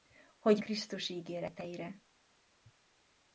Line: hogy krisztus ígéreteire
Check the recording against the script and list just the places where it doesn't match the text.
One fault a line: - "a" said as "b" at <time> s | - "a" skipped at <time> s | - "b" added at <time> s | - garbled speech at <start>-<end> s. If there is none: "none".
none